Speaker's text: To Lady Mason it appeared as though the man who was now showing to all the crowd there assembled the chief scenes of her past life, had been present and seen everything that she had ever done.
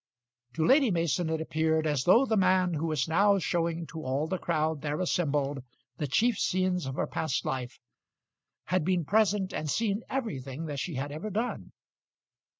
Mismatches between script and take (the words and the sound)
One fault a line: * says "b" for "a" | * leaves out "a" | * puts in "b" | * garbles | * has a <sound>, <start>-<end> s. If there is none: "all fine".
all fine